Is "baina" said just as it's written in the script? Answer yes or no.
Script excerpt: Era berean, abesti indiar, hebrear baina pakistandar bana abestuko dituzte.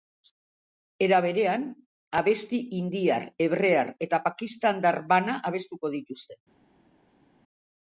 no